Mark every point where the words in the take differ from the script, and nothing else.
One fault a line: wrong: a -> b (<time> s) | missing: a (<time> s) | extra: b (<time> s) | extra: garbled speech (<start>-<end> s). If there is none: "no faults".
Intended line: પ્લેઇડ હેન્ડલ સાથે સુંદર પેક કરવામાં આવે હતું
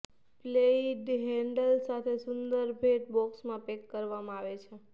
extra: ભેટ બોક્સમાં (2.8 s)
wrong: હતું -> છે (4.6 s)